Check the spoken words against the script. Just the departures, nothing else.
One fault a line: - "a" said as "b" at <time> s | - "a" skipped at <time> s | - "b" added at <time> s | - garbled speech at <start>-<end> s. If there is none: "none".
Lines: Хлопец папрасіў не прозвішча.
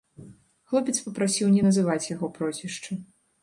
- "называць яго" added at 1.7 s